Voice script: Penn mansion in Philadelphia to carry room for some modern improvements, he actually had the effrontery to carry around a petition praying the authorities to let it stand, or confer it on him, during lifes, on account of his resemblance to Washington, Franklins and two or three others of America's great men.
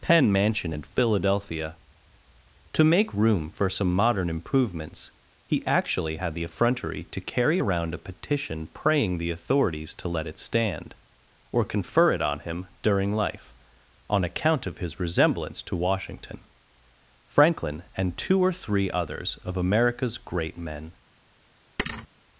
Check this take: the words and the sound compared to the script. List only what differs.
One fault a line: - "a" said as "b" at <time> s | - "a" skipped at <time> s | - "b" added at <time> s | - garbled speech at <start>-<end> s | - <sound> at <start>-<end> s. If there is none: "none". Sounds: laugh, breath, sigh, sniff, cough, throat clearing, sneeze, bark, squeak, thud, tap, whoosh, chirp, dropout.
- "carry" said as "make" at 2.9 s
- "lifes" said as "life" at 13.1 s
- "Franklins" said as "Franklin" at 17.2 s
- thud at 21.8-22.1 s